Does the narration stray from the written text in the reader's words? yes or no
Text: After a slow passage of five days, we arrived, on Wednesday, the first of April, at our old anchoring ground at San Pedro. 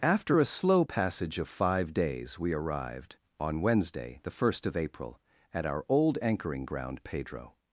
yes